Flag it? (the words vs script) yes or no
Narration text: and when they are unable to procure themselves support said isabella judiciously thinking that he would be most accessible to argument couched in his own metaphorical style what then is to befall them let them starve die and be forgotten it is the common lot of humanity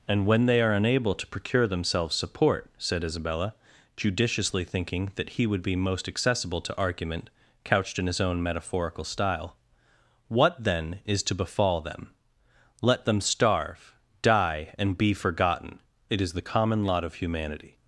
no